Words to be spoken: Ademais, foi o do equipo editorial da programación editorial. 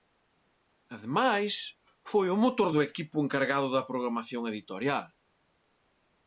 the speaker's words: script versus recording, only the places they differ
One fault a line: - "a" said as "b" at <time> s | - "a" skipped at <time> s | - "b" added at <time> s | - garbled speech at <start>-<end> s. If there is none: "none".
- "motor" added at 2.4 s
- "editorial" said as "encargado" at 3.2 s